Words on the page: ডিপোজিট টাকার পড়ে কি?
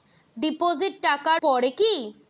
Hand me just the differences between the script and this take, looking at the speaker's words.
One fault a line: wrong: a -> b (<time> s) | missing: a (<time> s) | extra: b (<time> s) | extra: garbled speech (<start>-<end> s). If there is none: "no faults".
no faults